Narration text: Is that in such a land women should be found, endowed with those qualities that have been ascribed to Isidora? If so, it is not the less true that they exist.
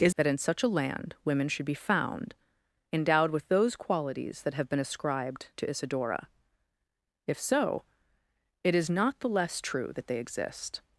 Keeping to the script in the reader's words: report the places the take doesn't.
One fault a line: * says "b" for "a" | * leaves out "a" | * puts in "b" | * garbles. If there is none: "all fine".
all fine